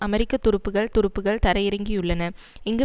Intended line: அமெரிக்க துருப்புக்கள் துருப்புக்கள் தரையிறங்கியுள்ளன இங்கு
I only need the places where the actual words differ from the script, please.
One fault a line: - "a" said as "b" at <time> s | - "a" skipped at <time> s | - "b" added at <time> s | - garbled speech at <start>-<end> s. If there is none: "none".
none